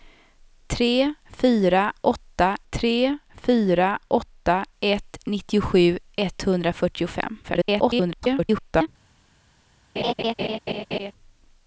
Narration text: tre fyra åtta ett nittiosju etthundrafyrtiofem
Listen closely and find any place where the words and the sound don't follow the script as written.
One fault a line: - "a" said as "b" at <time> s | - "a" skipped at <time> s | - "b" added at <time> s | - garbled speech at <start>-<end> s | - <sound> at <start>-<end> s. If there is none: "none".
- "tre fyra åtta" added at 2.7 s
- garbled speech at 7.4-8.9 s
- laugh at 10.0-11.1 s